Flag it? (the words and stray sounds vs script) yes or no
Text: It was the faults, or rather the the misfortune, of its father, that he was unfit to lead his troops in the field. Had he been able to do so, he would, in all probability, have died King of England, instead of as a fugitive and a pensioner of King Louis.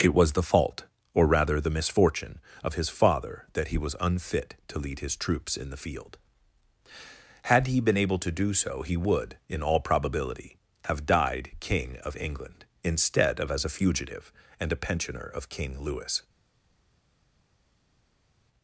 yes